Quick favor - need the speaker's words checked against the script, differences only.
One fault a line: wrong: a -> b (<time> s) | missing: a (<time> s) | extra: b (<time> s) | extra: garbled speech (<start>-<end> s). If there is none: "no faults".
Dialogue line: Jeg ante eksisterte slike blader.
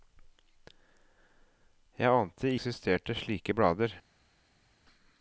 no faults